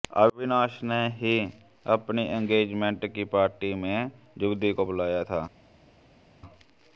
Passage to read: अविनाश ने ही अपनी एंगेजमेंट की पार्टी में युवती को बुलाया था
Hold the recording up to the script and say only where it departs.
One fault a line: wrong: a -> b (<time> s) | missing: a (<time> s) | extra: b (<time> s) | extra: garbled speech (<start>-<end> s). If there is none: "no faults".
no faults